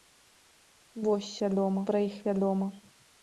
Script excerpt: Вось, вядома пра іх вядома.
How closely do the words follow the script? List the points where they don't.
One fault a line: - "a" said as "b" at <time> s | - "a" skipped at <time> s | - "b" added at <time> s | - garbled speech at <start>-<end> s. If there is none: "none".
none